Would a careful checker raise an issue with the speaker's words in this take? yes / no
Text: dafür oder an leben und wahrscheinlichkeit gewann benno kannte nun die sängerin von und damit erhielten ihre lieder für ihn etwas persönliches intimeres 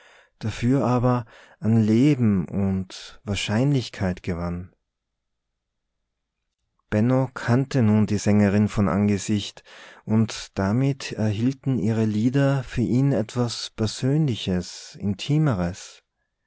yes